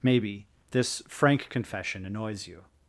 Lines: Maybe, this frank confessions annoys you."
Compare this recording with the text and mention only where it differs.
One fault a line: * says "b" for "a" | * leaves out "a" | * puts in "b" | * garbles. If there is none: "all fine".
* says "confession" for "confessions"